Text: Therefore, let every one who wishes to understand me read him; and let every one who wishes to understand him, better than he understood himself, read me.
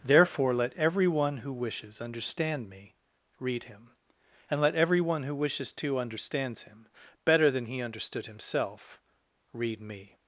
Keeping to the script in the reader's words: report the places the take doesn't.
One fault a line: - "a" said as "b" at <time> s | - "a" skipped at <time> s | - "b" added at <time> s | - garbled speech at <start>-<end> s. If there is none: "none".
- "to" skipped at 2.0 s
- "understand" said as "understands" at 6.0 s